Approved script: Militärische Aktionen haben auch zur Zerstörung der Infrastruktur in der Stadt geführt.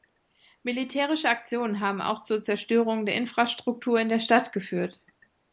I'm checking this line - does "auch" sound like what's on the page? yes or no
yes